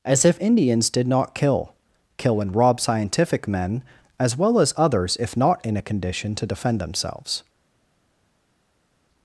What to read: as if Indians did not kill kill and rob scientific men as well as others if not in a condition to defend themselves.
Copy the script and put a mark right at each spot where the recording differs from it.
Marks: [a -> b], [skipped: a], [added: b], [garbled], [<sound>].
as if Indians did not kill kill and rob scientific men as well as others if not in a condition to defend themselves.